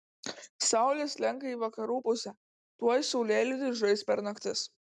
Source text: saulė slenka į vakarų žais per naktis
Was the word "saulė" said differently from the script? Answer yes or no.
no